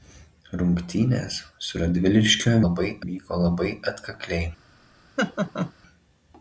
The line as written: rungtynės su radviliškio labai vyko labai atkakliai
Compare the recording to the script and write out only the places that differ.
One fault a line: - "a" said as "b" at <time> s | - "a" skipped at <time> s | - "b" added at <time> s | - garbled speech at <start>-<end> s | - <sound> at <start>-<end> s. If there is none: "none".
- laugh at 5.2-5.7 s